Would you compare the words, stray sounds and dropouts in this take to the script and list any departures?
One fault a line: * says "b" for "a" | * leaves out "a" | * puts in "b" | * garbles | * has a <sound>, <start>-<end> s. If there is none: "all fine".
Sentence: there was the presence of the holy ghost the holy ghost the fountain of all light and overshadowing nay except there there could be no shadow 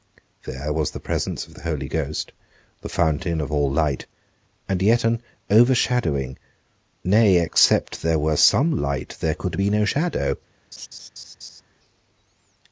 * leaves out "holy ghost the"
* puts in "yet an"
* puts in "were some light"
* has a laugh, 10.7-11.6 s